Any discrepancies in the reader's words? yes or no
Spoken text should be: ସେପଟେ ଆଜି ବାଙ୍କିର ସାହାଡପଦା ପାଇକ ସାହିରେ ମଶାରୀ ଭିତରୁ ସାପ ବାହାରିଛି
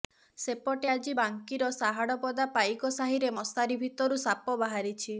no